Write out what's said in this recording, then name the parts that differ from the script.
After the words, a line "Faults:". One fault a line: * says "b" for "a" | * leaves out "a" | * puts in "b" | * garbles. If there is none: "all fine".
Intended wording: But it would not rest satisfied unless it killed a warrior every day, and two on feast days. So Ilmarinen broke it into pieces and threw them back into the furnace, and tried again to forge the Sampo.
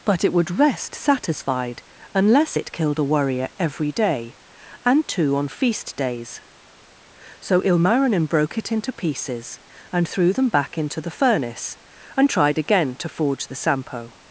But it would rest satisfied unless it killed a warrior every day, and two on feast days. So Ilmarinen broke it into pieces and threw them back into the furnace, and tried again to forge the Sampo.
Faults:
* leaves out "not"